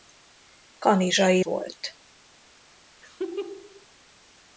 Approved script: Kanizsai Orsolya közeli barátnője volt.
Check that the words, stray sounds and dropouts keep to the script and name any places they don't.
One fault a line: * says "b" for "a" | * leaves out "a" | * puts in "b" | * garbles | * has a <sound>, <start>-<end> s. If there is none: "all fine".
* leaves out "Orsolya közeli barátnője"
* has a laugh, 3.0-3.9 s